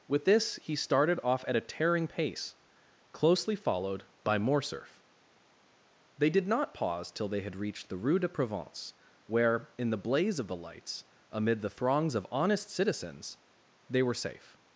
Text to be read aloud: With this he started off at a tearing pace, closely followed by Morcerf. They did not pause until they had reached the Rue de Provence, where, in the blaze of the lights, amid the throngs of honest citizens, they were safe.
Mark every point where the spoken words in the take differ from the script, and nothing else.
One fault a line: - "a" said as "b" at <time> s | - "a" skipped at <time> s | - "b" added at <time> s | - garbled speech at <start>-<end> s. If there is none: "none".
- "until" said as "till" at 7.1 s